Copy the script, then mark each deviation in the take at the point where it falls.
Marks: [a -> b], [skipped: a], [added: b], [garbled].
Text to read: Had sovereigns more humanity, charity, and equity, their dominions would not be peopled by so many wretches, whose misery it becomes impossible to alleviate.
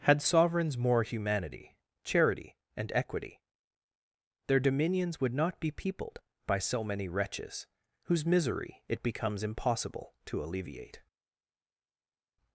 Had sovereigns more humanity, charity, and equity, their dominions would not be peopled by so many wretches, whose misery it becomes impossible to alleviate.